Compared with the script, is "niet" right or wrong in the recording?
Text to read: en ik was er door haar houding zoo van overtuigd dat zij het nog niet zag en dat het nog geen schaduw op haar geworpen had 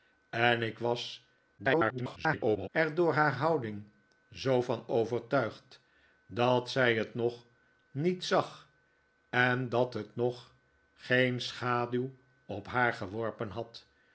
right